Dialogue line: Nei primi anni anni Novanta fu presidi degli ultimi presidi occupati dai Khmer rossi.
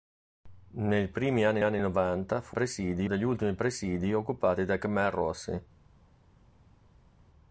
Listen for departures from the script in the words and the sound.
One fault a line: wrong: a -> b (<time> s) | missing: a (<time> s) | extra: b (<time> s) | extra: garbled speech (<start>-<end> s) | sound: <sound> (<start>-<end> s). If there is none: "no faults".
no faults